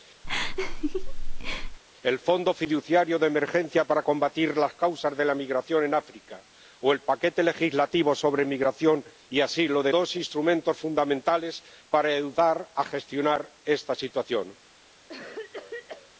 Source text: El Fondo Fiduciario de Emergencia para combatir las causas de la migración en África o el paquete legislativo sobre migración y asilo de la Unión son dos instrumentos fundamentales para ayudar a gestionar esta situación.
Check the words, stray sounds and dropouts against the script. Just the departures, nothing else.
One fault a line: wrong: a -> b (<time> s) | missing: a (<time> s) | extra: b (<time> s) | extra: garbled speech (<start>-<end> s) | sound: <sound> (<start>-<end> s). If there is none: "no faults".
sound: laugh (0.2-1.8 s)
missing: la Unión son (9.9 s)
sound: cough (15.1-16.1 s)